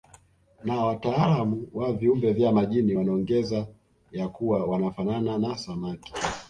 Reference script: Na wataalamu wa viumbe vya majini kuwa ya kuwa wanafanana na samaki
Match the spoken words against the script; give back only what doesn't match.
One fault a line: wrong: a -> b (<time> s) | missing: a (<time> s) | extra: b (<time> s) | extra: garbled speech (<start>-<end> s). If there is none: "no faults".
wrong: kuwa -> wanaongeza (2.9 s)